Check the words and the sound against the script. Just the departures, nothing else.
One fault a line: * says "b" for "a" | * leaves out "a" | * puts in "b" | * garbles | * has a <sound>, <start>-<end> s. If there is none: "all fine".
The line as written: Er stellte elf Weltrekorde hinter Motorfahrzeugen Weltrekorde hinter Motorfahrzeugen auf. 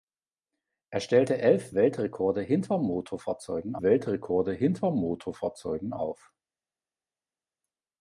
all fine